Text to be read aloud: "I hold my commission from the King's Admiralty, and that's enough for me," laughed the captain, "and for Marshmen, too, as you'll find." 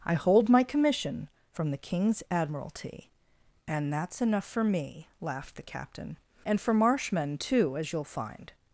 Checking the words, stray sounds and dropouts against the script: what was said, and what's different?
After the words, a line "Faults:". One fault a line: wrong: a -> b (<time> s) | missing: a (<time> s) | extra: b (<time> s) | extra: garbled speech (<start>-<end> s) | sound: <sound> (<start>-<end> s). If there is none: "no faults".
"I hold my commission from the King's Admiralty, and that's enough for me," laughed the captain, "and for Marshmen, too, as you'll find."
Faults:
no faults